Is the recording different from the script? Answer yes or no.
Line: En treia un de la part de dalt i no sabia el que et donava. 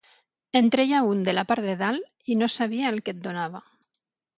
no